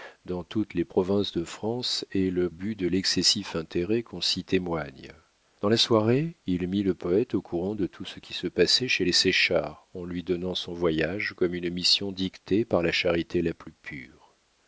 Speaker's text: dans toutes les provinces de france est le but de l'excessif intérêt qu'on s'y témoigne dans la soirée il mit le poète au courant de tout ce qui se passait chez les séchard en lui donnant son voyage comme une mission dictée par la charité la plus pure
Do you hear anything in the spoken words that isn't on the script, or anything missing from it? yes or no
no